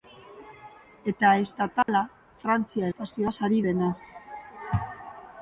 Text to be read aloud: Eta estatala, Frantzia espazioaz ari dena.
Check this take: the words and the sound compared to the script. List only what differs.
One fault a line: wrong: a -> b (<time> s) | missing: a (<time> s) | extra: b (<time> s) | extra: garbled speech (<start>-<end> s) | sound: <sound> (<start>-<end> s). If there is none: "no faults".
sound: dropout (1.8-1.9 s)